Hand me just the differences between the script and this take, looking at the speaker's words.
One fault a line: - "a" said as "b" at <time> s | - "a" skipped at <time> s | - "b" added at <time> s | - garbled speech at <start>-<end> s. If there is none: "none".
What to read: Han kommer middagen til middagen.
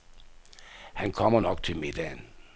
- "middagen" said as "nok" at 1.4 s